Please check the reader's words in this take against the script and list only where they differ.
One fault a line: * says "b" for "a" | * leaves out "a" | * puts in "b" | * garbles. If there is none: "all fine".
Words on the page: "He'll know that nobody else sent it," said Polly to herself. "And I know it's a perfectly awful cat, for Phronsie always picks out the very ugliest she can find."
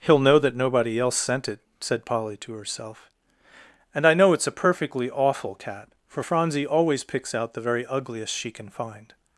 all fine